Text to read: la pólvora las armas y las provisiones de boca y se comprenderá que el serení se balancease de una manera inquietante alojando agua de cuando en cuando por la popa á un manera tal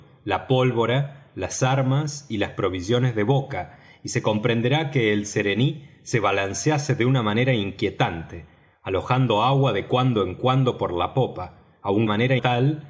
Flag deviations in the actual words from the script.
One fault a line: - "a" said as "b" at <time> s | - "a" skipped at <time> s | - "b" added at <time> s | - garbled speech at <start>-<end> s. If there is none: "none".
none